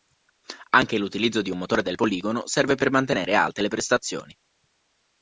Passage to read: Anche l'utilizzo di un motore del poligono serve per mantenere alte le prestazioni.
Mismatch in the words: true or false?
false